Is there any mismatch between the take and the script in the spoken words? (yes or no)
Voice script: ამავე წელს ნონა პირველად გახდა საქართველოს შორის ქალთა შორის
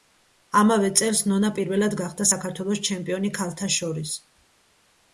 yes